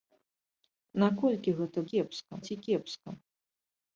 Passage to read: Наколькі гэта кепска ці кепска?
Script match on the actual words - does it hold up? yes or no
yes